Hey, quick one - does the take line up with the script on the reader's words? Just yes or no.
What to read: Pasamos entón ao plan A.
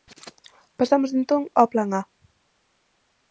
yes